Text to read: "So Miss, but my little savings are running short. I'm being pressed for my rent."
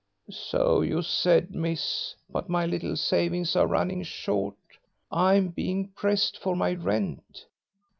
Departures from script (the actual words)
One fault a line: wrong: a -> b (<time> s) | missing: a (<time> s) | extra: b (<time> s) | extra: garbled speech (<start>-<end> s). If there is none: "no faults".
extra: you said (0.8 s)